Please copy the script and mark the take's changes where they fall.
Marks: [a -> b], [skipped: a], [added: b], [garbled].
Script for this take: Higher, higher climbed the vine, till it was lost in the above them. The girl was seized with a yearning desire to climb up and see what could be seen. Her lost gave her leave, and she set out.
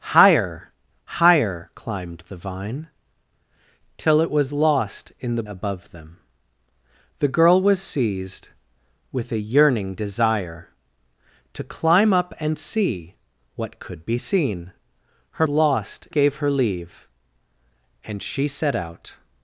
Higher, higher climbed the vine, till it was lost in the above them. The girl was seized with a yearning desire to climb up and see what could be seen. Her lost gave her leave, and she set out.